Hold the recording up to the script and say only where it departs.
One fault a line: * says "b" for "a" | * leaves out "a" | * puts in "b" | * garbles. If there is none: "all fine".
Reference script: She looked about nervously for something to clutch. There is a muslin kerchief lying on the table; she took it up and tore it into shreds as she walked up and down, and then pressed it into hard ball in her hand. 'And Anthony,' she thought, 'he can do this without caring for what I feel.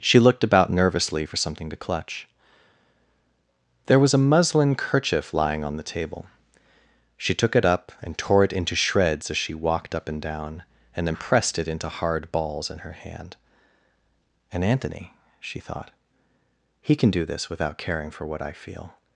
* says "was" for "is"
* says "balls" for "ball"